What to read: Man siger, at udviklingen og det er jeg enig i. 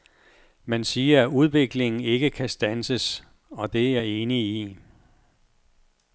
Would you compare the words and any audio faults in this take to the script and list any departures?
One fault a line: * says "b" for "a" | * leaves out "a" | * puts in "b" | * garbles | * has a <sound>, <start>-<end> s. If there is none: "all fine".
* puts in "ikke kan standses"